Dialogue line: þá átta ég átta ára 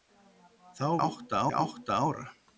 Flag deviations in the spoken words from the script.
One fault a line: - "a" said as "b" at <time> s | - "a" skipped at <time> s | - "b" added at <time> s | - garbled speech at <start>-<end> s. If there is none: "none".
none